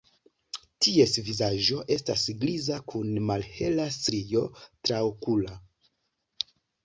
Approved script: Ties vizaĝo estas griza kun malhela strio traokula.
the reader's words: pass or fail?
pass